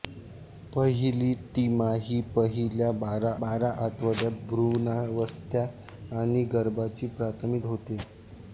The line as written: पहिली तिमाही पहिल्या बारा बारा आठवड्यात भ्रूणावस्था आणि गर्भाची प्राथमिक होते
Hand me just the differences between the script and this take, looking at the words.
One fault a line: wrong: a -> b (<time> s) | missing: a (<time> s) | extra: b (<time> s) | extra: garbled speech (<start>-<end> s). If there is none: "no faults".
no faults